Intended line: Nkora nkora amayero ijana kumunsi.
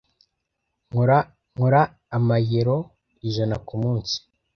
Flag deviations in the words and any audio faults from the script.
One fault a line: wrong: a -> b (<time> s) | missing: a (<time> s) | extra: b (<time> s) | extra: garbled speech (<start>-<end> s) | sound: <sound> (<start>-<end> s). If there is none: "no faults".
no faults